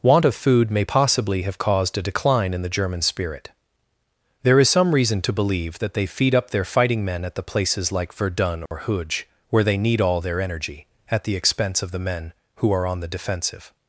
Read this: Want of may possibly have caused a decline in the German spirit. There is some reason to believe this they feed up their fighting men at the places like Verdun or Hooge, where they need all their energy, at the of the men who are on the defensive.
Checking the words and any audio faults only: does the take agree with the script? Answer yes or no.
no